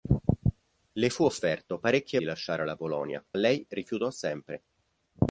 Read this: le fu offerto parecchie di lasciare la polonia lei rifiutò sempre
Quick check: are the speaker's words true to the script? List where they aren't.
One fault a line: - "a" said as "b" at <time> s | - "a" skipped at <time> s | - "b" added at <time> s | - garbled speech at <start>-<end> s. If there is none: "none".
none